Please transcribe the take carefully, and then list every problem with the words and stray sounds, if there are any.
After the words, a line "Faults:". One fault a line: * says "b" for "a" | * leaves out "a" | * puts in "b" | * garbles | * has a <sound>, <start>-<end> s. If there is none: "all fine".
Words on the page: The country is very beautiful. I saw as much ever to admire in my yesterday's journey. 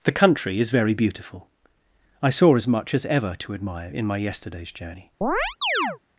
The country is very beautiful. I saw as much as ever to admire in my yesterday's journey.
Faults:
* puts in "as"
* has a chirp, 5.2-6.0 s